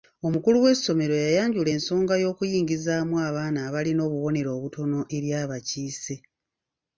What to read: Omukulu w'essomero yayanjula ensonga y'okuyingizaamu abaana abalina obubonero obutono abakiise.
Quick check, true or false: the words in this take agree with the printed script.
false